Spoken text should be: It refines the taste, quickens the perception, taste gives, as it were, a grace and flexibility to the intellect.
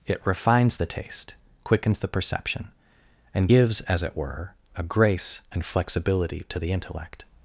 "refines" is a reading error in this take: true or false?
false